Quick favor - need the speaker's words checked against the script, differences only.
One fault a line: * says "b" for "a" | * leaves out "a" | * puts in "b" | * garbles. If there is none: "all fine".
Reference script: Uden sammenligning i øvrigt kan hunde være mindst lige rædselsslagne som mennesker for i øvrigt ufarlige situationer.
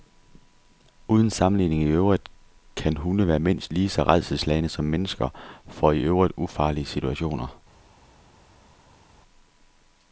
* puts in "så"